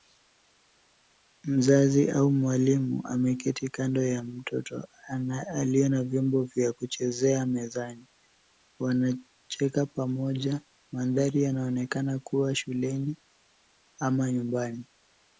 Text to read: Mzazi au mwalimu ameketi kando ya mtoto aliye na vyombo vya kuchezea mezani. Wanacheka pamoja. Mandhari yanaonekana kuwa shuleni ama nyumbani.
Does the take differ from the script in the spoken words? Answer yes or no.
no